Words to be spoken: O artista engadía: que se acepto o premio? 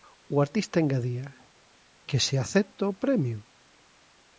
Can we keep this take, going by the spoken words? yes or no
yes